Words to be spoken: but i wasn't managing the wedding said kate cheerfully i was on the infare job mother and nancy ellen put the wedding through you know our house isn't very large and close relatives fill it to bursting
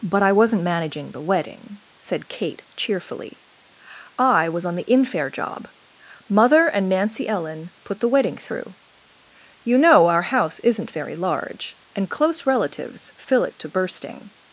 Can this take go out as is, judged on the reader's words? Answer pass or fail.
pass